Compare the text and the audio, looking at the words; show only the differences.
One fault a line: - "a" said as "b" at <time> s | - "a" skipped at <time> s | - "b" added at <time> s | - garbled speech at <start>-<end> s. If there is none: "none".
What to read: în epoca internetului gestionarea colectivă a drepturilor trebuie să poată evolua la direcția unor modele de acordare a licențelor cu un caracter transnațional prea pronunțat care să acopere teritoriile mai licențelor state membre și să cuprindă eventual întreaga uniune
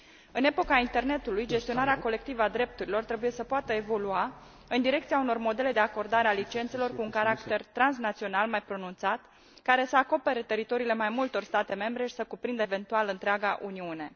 - "la" said as "în" at 4.7 s
- "prea" said as "mai" at 8.5 s
- "licențelor" said as "multor" at 11.1 s